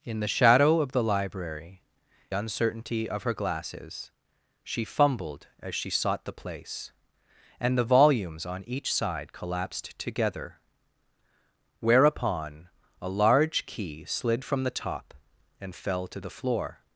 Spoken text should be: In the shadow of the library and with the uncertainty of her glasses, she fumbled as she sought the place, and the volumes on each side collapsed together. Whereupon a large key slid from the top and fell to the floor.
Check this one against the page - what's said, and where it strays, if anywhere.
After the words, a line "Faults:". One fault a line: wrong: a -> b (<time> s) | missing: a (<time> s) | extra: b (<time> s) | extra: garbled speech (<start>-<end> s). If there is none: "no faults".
In the shadow of the library uncertainty of her glasses, she fumbled as she sought the place, and the volumes on each side collapsed together. Whereupon a large key slid from the top and fell to the floor.
Faults:
missing: and with the (1.8 s)